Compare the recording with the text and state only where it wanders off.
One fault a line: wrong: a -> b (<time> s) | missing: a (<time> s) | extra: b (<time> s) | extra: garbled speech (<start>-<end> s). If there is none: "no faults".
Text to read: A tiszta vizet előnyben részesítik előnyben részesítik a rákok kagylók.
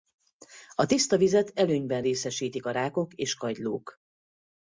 missing: előnyben részesítik (2.7 s)
extra: és (3.1 s)